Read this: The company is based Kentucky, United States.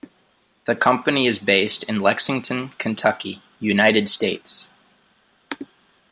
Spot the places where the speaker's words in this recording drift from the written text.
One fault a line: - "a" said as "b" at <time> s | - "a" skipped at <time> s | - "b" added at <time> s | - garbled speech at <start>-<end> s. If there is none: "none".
- "in Lexington" added at 1.8 s